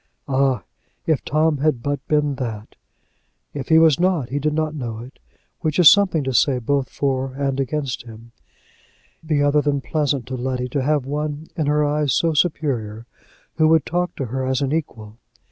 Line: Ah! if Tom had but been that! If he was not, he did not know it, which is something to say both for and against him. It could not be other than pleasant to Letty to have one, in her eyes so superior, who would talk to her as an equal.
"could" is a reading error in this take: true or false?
true